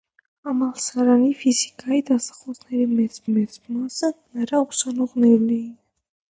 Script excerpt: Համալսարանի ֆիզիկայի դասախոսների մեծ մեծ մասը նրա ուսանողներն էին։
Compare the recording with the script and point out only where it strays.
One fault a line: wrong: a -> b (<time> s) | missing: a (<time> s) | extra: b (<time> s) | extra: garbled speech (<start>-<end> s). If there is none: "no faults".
no faults